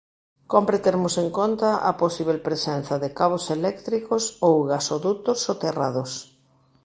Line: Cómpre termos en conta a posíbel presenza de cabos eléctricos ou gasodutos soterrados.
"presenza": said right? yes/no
yes